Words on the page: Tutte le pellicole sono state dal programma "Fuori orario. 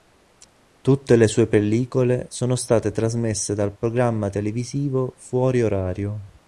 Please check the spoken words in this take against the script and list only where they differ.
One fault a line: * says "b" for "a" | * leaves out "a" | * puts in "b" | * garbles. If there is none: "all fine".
* puts in "sue"
* puts in "trasmesse"
* puts in "televisivo"